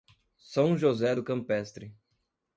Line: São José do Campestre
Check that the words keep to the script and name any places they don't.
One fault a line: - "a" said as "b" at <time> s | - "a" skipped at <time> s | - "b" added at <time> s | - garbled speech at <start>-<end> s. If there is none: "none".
none